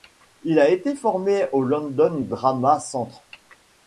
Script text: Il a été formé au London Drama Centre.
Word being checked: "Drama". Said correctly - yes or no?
yes